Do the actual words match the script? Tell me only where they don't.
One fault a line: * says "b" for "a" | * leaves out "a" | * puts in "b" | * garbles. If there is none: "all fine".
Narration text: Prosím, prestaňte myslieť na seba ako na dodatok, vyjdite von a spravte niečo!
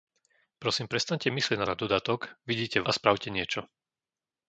* leaves out "seba ako"
* leaves out "von"